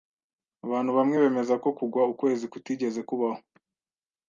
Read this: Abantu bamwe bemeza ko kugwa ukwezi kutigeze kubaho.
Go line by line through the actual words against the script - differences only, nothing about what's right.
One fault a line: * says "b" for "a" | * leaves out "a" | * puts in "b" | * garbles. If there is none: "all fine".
all fine